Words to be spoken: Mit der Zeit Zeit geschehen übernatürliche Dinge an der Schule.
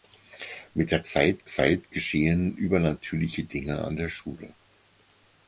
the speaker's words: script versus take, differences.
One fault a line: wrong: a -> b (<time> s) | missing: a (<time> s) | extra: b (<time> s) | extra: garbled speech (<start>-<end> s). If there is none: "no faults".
no faults